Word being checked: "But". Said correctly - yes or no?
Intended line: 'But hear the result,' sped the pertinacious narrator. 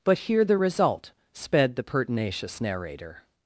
yes